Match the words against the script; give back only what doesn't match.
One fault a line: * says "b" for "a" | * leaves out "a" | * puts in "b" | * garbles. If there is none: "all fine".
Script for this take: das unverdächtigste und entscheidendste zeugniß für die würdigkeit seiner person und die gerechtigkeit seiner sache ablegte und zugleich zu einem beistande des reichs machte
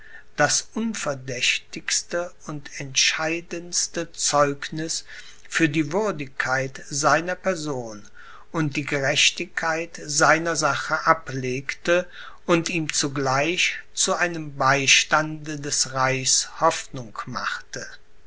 * puts in "ihm"
* puts in "hoffnung"